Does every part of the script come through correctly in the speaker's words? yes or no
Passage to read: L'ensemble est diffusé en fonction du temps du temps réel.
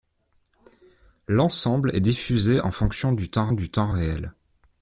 yes